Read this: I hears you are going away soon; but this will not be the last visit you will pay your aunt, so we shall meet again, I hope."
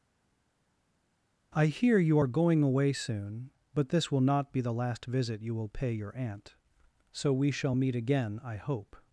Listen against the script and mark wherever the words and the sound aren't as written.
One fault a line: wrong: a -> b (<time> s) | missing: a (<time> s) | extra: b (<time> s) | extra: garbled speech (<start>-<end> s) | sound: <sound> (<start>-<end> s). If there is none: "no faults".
wrong: hears -> hear (1.7 s)